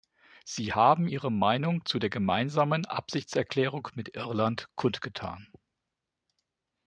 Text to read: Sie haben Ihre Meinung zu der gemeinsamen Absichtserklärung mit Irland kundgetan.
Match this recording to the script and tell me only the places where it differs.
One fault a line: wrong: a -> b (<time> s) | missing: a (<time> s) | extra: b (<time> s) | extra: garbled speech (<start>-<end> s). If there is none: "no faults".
no faults